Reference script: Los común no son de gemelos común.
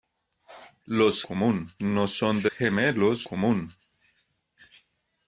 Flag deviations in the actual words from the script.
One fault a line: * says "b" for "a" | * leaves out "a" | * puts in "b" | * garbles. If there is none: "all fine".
all fine